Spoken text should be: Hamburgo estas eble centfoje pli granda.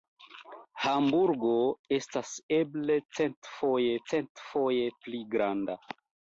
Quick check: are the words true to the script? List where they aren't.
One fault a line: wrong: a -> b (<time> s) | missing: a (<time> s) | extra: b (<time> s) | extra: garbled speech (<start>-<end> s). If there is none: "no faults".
extra: centfoje (4.1 s)